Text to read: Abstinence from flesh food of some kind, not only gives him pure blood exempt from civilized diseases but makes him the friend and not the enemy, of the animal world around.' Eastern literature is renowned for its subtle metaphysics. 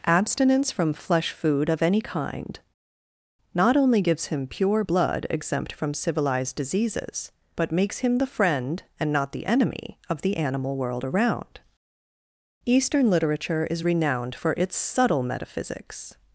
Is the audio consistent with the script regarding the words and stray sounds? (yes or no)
no